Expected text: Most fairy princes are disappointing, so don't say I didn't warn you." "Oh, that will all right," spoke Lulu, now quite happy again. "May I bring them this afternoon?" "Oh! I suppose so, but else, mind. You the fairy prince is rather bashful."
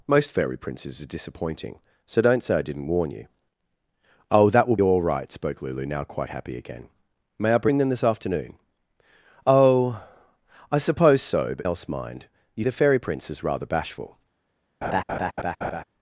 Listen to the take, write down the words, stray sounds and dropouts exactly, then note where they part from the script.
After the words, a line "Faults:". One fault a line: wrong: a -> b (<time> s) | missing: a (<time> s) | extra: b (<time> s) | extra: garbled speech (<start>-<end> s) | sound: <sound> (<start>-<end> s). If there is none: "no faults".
Most fairy princes are disappointing, so don't say I didn't warn you." "Oh, that will all right," spoke Lulu, now quite happy again. "May I bring them this afternoon?" "Oh! I suppose so, but else, mind. You the fairy prince is rather bashful."
Faults:
sound: laugh (14.8-15.8 s)